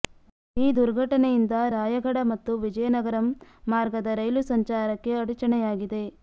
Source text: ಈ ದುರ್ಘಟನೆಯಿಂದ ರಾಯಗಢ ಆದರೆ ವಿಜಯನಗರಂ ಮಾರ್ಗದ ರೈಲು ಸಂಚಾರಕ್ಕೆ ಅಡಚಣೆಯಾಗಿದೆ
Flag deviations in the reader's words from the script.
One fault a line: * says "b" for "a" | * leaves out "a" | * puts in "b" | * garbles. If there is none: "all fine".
* says "ಮತ್ತು" for "ಆದರೆ"